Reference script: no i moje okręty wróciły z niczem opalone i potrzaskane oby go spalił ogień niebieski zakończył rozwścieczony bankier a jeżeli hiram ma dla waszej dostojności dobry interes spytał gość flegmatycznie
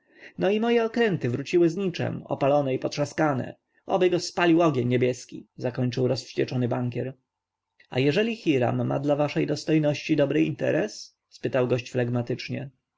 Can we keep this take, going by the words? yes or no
yes